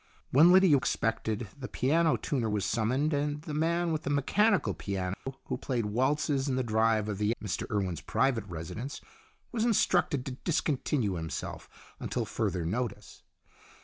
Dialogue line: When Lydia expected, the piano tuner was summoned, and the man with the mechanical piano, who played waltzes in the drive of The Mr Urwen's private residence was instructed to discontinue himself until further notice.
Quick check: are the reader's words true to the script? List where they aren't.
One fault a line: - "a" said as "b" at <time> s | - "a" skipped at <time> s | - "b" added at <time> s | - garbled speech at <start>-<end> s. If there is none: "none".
none